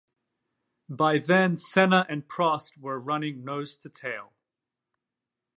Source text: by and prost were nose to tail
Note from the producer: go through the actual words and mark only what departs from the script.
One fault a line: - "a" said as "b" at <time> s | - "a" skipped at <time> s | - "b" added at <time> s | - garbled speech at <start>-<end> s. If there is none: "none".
- "then senna" added at 1.2 s
- "running" added at 3.0 s